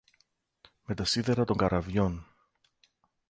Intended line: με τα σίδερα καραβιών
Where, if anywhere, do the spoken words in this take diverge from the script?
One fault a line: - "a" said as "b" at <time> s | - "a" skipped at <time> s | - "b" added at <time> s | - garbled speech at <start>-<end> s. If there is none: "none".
- "των" added at 1.4 s